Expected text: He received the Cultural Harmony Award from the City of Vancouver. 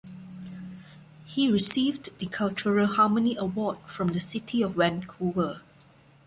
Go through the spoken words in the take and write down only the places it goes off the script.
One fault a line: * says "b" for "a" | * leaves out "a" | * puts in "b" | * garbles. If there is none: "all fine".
all fine